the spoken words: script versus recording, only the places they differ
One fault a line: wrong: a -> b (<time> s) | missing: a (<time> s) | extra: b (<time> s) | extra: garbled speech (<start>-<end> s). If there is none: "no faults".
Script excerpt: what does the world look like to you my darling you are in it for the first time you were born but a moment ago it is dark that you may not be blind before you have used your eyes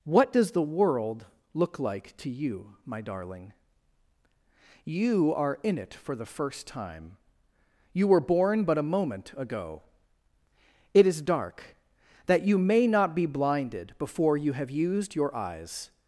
wrong: blind -> blinded (13.3 s)